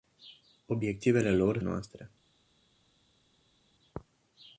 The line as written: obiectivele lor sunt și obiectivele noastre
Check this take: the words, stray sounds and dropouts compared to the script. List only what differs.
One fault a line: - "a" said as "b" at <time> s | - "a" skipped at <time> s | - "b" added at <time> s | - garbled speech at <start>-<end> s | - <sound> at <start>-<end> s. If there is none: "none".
- "sunt și obiectivele" skipped at 1.6 s